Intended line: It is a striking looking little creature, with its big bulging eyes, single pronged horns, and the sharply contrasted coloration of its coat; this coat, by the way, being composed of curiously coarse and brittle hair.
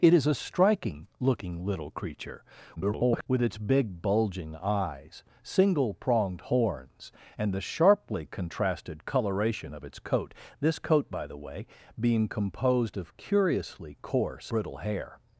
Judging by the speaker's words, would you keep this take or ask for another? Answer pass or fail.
fail